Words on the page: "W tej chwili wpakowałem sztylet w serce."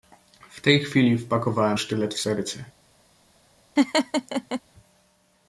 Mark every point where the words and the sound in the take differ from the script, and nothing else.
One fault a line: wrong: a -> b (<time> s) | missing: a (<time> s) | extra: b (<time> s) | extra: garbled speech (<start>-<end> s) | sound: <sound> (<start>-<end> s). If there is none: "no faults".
sound: laugh (3.8-4.6 s)